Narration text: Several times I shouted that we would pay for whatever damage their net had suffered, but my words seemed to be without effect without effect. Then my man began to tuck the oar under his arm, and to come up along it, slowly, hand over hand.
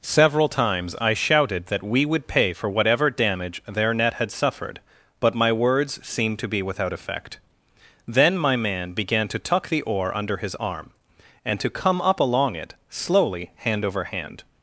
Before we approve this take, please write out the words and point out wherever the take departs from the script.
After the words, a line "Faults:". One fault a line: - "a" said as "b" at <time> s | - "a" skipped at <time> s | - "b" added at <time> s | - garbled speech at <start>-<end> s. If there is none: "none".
Several times I shouted that we would pay for whatever damage their net had suffered, but my words seemed to be without effect. Then my man began to tuck the oar under his arm, and to come up along it, slowly, hand over hand.
Faults:
- "without effect" skipped at 7.4 s